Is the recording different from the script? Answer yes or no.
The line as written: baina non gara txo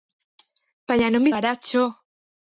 no